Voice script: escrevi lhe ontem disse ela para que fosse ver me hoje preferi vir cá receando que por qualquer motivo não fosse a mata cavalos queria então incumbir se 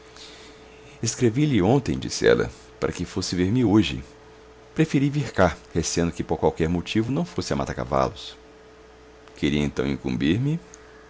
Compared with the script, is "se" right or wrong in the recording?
wrong